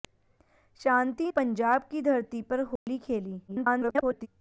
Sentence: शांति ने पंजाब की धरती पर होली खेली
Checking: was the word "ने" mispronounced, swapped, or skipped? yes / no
yes